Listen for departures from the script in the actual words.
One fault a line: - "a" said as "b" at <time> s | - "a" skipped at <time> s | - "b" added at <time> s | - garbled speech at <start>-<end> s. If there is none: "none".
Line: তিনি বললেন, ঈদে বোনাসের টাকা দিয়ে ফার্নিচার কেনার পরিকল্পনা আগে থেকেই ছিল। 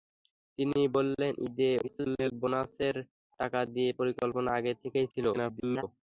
- garbled speech at 1.8-2.3 s
- "ফার্নিচার কেনার" skipped at 3.9 s
- garbled speech at 5.3-5.8 s